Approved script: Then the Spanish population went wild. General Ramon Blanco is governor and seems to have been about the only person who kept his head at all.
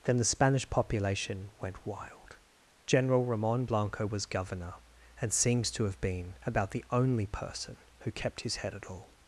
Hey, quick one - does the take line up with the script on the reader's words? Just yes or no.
no